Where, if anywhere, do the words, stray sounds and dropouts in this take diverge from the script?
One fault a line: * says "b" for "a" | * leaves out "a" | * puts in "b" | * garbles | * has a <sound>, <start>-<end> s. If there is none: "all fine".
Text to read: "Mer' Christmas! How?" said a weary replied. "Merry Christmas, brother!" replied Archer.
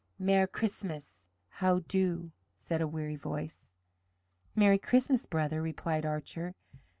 * puts in "do"
* says "voice" for "replied"